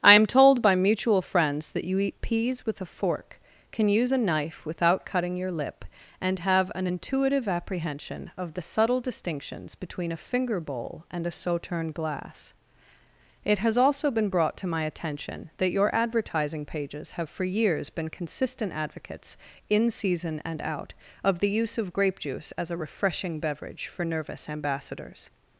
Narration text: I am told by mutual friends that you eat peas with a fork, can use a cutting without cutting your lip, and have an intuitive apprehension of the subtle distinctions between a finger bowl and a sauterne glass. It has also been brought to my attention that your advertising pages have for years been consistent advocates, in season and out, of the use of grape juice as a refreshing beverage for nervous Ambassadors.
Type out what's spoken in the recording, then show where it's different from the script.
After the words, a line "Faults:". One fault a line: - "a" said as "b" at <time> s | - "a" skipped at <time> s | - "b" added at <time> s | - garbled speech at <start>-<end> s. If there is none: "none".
I am told by mutual friends that you eat peas with a fork, can use a knife without cutting your lip, and have an intuitive apprehension of the subtle distinctions between a finger bowl and a sauterne glass. It has also been brought to my attention that your advertising pages have for years been consistent advocates, in season and out, of the use of grape juice as a refreshing beverage for nervous Ambassadors.
Faults:
- "cutting" said as "knife" at 4.2 s